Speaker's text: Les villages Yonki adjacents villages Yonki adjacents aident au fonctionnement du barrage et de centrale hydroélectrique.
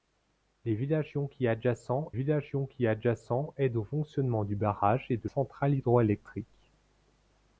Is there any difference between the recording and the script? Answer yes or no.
no